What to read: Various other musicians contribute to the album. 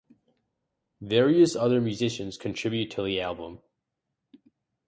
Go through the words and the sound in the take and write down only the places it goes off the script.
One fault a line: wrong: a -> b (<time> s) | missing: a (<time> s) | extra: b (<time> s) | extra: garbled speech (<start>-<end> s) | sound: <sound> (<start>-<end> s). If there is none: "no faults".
no faults